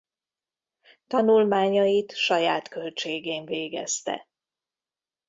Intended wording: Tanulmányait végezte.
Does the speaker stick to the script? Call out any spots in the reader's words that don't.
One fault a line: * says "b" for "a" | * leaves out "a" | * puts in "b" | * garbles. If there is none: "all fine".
* puts in "saját költségén"